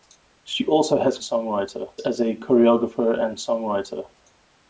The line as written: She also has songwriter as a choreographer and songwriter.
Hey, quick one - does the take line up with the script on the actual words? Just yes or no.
yes